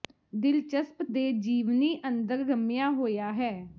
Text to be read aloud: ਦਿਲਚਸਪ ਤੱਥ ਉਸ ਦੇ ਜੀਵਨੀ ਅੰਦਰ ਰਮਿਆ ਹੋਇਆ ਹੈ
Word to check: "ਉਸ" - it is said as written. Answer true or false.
false